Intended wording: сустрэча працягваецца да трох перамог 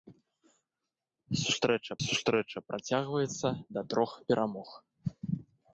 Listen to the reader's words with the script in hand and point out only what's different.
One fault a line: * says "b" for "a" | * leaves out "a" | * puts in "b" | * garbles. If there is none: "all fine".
* puts in "сустрэча"